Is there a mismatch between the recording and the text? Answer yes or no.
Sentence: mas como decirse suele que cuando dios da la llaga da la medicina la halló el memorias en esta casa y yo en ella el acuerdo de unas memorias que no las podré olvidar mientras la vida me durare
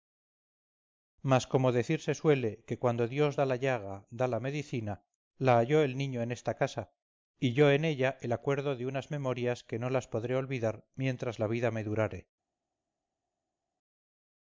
yes